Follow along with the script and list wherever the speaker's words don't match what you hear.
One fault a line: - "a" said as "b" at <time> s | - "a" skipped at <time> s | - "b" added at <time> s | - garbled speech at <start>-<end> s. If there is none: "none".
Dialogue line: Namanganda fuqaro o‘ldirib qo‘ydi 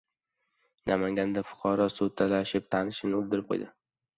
- "suv talashib tanishini" added at 2.0 s